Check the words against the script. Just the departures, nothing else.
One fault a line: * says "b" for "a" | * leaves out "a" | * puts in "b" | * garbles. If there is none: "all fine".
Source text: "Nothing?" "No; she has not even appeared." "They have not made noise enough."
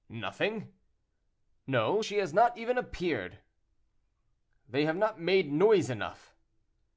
all fine